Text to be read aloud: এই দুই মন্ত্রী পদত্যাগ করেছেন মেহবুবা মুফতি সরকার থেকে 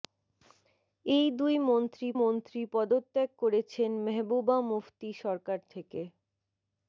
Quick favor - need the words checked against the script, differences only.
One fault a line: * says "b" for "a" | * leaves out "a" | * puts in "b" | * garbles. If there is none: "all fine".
* puts in "মন্ত্রী"